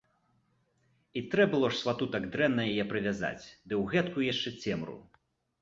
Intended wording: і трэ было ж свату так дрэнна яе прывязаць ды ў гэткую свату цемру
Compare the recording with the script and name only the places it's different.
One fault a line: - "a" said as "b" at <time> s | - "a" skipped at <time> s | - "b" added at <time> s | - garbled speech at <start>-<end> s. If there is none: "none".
- "свату" said as "яшчэ" at 4.3 s